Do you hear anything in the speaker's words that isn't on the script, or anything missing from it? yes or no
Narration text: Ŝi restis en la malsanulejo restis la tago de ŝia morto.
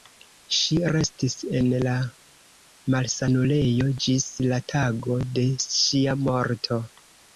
yes